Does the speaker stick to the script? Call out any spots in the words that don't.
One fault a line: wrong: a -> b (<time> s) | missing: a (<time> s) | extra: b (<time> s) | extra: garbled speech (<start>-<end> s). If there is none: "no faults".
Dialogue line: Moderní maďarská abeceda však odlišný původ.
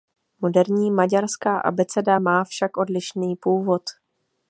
extra: má (2.2 s)